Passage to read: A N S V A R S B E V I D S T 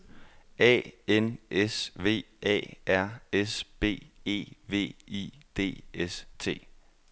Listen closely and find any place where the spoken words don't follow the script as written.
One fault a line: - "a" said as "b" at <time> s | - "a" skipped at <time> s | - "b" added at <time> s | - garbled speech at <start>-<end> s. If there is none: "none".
none